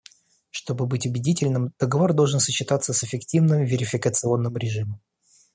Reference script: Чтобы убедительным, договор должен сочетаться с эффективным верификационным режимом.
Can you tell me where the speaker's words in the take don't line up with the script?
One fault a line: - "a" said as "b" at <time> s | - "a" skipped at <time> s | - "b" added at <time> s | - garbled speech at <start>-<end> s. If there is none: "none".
- "быть" added at 0.9 s